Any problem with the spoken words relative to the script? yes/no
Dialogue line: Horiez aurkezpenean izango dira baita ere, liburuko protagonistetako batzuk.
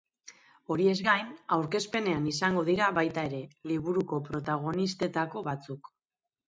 yes